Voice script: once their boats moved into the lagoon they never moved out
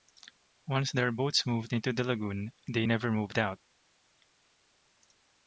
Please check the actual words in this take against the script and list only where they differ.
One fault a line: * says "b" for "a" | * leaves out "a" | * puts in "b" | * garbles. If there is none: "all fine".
all fine